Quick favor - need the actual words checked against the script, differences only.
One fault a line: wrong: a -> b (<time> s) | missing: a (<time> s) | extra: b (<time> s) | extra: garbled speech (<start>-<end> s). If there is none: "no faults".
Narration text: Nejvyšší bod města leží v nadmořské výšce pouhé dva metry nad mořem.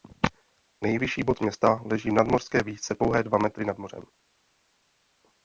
no faults